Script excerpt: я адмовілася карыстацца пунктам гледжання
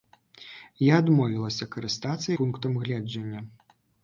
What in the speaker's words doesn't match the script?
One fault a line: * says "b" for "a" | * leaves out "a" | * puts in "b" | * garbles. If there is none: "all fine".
all fine